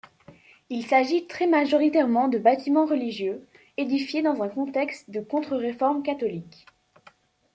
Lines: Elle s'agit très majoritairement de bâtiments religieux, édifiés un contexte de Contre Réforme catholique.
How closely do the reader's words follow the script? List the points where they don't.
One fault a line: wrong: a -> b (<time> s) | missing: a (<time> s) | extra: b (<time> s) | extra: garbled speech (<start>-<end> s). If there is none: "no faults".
wrong: Elle -> Il (0.7 s)
extra: dans (4.2 s)